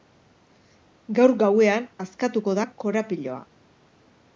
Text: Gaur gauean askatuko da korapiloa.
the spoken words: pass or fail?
pass